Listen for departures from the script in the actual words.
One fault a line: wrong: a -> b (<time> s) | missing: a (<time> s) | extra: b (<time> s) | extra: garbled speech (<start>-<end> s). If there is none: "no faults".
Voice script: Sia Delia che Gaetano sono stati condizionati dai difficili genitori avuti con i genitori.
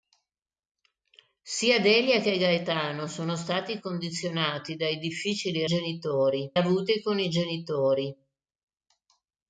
no faults